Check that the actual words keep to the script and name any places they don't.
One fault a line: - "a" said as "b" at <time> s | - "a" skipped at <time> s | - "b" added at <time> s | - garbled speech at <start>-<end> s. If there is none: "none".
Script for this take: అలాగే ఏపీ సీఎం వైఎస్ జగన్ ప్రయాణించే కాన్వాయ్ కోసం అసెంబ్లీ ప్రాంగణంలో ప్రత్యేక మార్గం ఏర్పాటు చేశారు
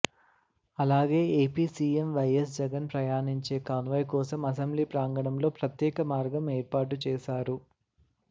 none